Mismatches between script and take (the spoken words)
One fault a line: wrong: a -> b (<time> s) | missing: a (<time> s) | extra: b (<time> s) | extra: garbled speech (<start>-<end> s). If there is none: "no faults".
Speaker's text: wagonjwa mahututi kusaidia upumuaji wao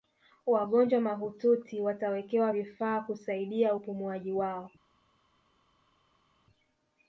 extra: watawekewa vifaa (1.8 s)